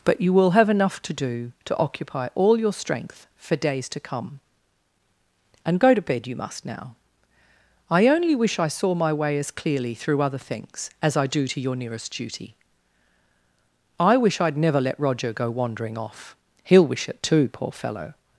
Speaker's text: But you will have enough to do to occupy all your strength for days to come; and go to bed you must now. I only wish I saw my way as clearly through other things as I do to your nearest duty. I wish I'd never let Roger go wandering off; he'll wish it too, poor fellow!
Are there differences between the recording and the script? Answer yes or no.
no